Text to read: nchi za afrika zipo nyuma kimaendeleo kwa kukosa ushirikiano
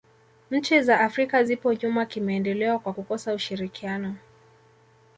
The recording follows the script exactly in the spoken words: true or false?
true